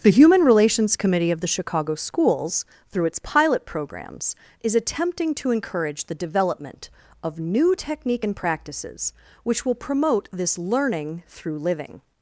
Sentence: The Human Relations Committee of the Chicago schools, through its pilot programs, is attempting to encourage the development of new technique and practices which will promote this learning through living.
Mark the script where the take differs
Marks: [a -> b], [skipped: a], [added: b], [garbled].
The Human Relations Committee of the Chicago schools, through its pilot programs, is attempting to encourage the development of new technique and practices which will promote this learning through living.